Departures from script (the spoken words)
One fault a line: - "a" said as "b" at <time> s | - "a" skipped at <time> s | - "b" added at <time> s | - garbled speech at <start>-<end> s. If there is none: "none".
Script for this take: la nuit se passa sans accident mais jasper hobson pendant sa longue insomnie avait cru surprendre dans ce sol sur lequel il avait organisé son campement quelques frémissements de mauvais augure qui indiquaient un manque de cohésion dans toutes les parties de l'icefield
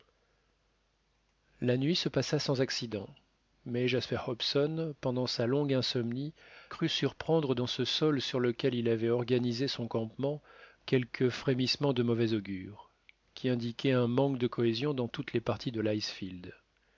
- "avait" skipped at 6.3 s